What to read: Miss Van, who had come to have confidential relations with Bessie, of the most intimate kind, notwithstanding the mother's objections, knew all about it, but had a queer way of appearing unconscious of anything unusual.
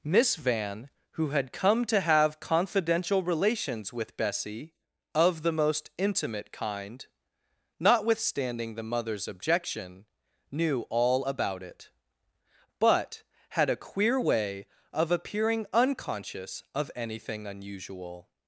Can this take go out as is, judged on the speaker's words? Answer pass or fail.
fail